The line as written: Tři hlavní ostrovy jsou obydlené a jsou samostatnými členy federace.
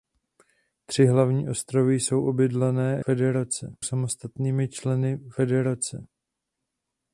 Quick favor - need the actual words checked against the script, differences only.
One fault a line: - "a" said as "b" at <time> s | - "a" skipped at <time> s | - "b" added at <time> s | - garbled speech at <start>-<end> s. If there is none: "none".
- "jsou" said as "federace" at 3.0 s